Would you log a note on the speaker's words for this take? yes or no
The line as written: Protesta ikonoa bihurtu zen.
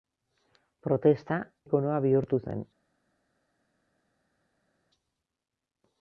no